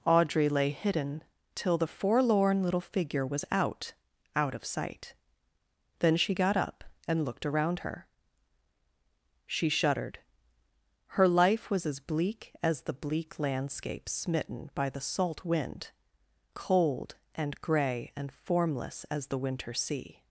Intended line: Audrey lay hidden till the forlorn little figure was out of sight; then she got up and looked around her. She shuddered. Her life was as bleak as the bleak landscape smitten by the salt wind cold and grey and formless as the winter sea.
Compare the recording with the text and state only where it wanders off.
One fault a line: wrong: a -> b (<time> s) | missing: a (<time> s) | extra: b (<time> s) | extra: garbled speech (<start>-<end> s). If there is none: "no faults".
extra: out (4.3 s)